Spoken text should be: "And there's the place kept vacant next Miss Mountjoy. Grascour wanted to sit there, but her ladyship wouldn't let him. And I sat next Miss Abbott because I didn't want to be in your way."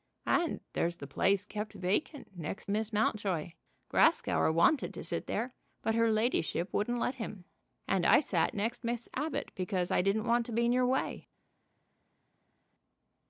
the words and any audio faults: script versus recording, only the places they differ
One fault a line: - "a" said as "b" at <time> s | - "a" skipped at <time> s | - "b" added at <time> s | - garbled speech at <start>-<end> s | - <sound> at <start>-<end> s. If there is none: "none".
none